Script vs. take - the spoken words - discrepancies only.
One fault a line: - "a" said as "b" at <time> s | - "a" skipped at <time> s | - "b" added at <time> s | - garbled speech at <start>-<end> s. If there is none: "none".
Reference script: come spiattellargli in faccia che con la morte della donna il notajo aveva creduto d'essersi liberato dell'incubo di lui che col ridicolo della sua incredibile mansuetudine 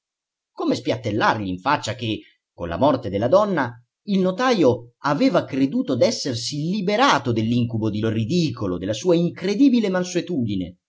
- "lui che col" skipped at 8.0 s